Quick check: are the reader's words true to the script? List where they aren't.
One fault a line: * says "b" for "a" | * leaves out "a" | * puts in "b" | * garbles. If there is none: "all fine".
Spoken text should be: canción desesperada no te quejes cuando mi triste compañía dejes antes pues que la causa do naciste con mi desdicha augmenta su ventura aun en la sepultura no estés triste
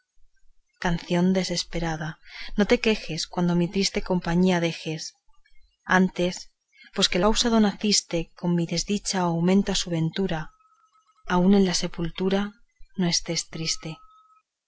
* leaves out "la"